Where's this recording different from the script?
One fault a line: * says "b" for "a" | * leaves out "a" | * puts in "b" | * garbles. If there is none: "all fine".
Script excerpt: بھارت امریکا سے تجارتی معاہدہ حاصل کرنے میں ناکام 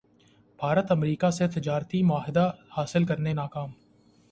* leaves out "میں"